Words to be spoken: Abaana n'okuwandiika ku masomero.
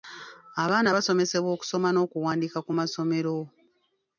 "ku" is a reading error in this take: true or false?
false